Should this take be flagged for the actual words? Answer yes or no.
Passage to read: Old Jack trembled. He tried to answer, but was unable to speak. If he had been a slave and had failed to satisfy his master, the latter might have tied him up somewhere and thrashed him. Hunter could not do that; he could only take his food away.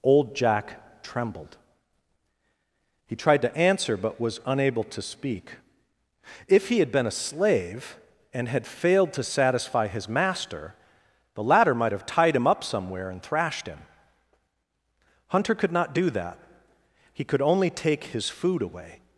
no